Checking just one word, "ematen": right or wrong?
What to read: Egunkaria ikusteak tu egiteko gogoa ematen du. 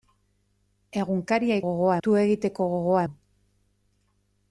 wrong